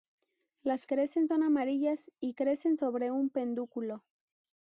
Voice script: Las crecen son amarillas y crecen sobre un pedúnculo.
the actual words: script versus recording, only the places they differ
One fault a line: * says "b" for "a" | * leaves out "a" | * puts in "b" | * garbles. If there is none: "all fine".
all fine